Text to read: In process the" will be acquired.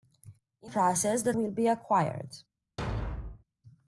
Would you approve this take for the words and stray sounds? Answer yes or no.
no